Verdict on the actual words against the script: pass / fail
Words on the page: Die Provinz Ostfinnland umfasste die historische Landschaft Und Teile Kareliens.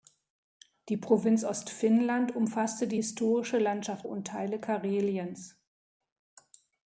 pass